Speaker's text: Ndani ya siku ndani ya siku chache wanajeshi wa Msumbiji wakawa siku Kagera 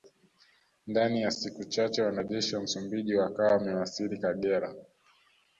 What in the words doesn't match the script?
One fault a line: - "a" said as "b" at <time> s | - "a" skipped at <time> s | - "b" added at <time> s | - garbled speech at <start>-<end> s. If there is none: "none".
- "ndani ya siku" skipped at 1.6 s
- "siku" said as "wamewasili" at 3.5 s